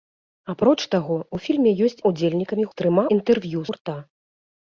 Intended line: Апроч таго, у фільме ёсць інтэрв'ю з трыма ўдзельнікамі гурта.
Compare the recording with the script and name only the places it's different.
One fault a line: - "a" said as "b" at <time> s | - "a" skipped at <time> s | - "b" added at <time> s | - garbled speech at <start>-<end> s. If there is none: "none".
- "інтэрв'ю" said as "ўдзельнікамі" at 2.1 s
- "ўдзельнікамі" said as "інтэрв'ю" at 3.2 s